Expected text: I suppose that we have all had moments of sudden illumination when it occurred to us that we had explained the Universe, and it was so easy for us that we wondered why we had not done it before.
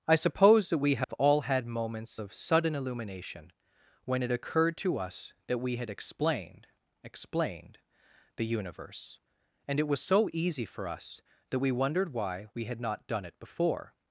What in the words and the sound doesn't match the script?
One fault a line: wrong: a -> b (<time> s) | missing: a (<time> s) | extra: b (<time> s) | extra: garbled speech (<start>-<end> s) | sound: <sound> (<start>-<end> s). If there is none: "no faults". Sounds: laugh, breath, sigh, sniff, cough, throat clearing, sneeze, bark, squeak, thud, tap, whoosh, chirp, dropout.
sound: dropout (1.0-1.1 s)
extra: explained (7.0 s)